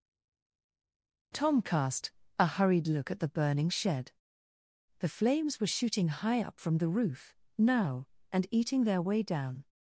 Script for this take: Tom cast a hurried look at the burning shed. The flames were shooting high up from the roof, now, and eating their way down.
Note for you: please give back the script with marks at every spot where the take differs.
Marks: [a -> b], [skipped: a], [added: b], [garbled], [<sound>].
Tom cast a hurried look at the burning shed. The flames were shooting high up from the roof, now, and eating their way down.